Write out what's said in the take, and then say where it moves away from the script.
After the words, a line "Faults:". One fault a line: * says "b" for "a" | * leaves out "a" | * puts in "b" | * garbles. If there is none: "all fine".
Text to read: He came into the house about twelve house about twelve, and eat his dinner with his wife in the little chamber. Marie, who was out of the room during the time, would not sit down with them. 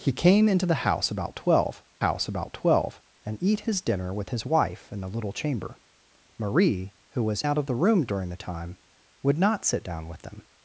He came into the house about twelve house about twelve, and eat his dinner with his wife in the little chamber. Marie, who was out of the room during the time, would not sit down with them.
Faults:
all fine